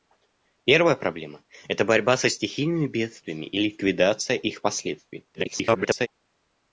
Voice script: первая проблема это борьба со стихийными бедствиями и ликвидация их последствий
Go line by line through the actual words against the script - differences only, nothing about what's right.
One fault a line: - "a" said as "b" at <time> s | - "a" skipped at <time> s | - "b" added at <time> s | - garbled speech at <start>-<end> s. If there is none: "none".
- garbled speech at 5.3-6.1 s